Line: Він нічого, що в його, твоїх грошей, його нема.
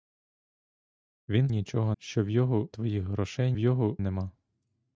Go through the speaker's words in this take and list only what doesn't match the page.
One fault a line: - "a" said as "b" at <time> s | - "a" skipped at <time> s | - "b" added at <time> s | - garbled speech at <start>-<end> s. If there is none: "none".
none